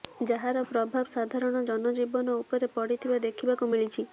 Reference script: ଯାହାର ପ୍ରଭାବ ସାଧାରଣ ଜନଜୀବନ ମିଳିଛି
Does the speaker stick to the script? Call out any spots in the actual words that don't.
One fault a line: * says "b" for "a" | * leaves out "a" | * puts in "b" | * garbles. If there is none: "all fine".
* puts in "ଉପରେ ପଡିଥିବା ଦେଖିବାକୁ"